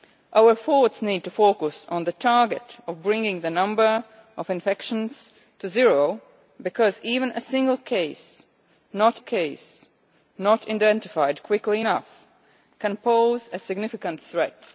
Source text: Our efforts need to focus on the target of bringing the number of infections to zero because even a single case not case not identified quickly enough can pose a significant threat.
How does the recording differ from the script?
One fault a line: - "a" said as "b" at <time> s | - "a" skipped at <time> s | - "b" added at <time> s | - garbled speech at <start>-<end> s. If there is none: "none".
none